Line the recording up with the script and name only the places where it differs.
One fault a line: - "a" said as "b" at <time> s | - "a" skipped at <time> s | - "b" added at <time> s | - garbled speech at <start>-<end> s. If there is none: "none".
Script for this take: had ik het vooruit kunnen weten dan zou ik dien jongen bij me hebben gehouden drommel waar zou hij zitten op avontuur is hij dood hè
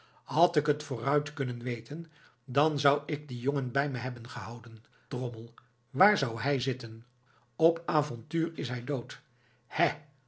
none